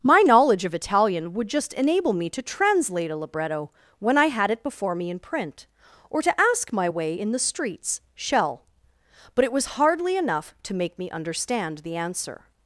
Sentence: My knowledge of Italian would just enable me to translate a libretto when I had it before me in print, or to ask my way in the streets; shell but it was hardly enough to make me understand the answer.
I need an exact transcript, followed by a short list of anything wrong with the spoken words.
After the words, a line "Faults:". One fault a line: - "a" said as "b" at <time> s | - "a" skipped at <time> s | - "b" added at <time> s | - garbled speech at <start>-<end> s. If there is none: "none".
My knowledge of Italian would just enable me to translate a libretto when I had it before me in print, or to ask my way in the streets; shell but it was hardly enough to make me understand the answer.
Faults:
none